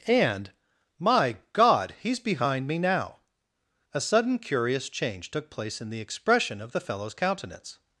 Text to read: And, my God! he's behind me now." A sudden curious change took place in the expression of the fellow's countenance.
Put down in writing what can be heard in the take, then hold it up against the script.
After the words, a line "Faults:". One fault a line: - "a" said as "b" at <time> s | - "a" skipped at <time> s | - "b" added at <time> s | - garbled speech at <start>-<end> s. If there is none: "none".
And, my God! he's behind me now." A sudden curious change took place in the expression of the fellow's countenance.
Faults:
none